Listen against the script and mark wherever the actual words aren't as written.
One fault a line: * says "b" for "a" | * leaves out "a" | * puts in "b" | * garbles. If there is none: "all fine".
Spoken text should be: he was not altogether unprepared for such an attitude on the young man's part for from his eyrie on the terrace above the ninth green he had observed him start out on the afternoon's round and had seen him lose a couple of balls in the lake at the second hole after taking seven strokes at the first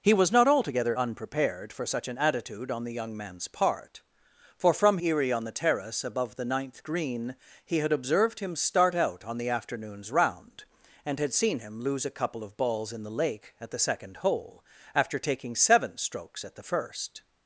* leaves out "his"